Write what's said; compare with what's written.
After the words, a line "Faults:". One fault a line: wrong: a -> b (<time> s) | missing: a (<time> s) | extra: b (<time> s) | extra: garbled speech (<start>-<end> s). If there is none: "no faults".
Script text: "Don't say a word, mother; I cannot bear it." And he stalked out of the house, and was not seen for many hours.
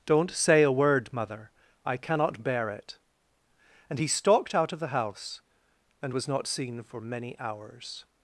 "Don't say a word, mother; I cannot bear it." And he stalked out of the house, and was not seen for many hours.
Faults:
no faults